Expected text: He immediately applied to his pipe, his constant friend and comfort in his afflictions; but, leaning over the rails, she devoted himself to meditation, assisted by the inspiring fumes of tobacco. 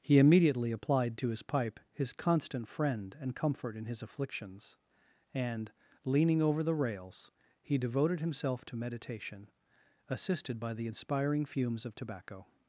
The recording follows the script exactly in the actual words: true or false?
false